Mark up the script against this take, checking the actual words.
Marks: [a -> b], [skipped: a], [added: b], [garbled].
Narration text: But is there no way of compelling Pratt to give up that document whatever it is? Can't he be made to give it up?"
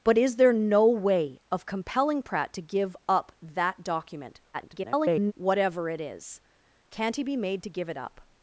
But is there no way of compelling Pratt to give up that document [garbled] whatever it is? Can't he be made to give it up?"